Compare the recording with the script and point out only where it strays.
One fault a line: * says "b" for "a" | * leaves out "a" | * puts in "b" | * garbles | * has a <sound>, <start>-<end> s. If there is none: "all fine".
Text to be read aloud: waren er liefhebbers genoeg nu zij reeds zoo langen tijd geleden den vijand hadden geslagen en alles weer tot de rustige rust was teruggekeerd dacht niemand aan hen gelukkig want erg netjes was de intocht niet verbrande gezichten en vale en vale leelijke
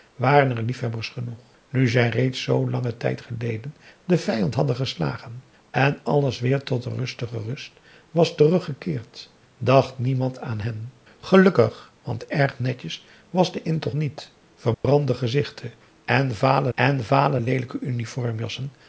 * has a dropout, 14.7-14.8 s